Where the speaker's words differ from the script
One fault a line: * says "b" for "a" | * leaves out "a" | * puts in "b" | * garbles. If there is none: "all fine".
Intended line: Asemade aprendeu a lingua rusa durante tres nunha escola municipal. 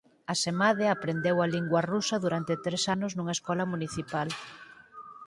* puts in "anos"